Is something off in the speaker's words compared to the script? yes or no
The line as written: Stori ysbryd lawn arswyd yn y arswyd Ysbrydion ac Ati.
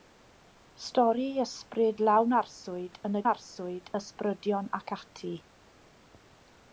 no